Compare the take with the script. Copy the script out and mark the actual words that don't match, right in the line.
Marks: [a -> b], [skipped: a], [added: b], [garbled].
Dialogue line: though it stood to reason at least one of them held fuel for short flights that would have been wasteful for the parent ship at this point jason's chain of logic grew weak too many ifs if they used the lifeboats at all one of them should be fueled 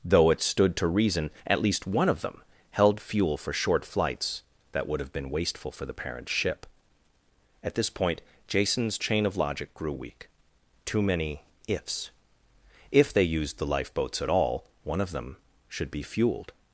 though it stood to reason at least one of them held fuel for short flights that would have been wasteful for the parent ship at this point jason's chain of logic grew weak too many ifs if they used the lifeboats at all one of them should be fueled